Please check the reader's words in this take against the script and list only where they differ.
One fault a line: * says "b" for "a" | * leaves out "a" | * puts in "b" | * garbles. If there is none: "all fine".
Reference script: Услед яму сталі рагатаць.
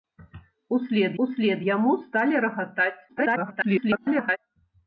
* puts in "услед"
* garbles